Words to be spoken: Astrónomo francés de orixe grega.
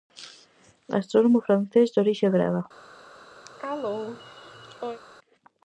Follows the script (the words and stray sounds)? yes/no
no